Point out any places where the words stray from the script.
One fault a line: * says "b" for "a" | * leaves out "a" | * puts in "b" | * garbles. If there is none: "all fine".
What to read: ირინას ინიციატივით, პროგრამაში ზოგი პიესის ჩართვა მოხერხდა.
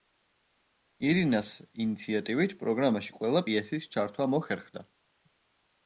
* says "ყველა" for "ზოგი"